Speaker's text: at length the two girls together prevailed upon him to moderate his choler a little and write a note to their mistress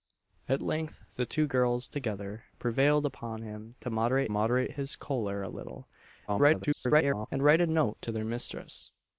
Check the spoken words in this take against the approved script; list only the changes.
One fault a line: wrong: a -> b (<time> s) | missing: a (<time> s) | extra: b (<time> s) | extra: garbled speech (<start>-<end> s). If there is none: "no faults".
extra: moderate (4.3 s)
extra: garbled speech (6.3-7.3 s)